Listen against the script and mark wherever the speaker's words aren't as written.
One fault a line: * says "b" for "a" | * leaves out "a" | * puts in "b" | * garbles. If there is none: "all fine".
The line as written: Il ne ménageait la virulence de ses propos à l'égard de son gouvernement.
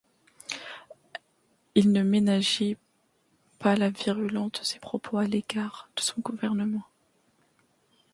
* puts in "pas"